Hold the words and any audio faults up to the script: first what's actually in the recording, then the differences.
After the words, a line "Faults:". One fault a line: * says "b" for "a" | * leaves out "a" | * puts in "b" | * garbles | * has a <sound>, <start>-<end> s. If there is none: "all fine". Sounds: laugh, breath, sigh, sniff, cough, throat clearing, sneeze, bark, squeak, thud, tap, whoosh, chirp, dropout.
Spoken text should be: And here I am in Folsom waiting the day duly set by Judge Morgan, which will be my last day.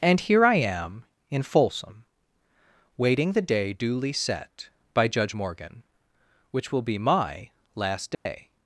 And here I am in Folsom waiting the day duly set by Judge Morgan, which will be my last day.
Faults:
* has a dropout, 8.1-8.3 s